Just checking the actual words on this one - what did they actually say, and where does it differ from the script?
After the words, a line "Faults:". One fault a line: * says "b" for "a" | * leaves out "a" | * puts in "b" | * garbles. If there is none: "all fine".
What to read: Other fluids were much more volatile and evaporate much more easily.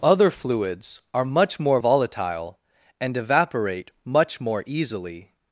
Other fluids are much more volatile and evaporate much more easily.
Faults:
* says "are" for "were"